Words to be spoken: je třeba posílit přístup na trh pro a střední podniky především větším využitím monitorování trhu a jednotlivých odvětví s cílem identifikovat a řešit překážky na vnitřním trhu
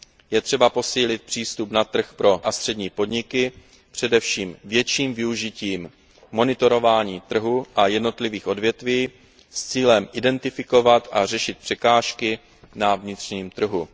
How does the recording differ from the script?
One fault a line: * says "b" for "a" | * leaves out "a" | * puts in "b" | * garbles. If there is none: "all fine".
all fine